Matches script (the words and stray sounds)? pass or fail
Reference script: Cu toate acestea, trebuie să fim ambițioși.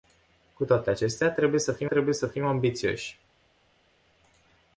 fail